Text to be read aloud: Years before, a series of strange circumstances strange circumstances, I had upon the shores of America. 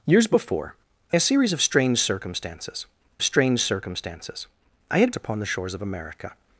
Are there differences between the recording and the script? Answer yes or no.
no